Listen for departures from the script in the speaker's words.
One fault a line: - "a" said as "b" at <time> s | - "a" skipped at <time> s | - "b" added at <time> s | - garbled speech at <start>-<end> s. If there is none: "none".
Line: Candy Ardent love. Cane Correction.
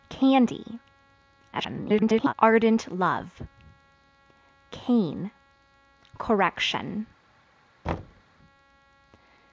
- garbled speech at 1.5-2.3 s